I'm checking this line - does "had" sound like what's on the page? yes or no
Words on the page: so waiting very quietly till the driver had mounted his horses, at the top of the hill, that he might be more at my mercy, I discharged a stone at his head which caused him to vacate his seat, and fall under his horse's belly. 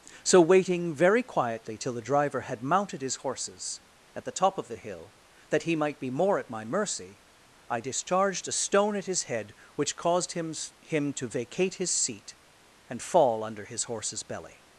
yes